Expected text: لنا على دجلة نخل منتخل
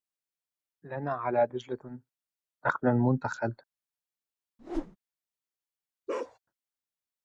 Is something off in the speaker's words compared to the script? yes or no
no